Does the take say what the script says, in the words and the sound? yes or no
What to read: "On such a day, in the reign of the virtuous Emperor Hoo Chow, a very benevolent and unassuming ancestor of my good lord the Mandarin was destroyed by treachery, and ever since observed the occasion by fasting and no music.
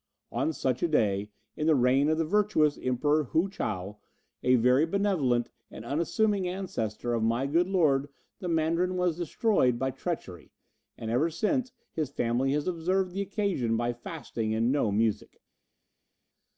no